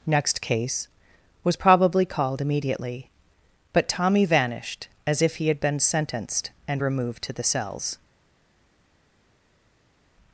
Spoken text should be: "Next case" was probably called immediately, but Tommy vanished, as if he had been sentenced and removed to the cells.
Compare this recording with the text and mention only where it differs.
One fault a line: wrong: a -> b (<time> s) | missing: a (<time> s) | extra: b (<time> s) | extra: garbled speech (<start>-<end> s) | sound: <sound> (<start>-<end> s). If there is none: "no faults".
no faults